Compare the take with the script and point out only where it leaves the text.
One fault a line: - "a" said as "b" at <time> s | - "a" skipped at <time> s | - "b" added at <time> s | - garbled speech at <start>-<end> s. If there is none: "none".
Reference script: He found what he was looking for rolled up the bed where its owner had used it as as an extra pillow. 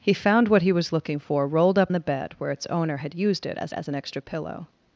none